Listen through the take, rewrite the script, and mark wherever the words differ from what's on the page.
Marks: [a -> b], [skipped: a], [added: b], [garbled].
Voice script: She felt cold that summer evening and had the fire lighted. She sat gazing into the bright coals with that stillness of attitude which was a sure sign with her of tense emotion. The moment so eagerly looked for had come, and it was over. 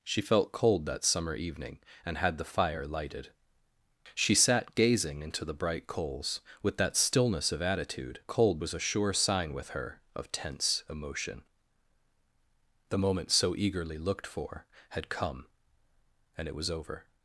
She felt cold that summer evening and had the fire lighted. She sat gazing into the bright coals with that stillness of attitude [which -> cold] was a sure sign with her of tense emotion. The moment so eagerly looked for had come, and it was over.